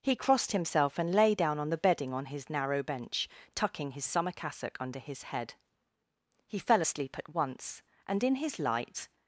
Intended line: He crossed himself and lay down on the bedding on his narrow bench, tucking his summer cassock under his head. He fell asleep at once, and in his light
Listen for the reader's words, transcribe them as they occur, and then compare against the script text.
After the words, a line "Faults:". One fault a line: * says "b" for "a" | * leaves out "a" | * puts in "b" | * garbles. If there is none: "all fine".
He crossed himself and lay down on the bedding on his narrow bench, tucking his summer cassock under his head. He fell asleep at once, and in his light
Faults:
all fine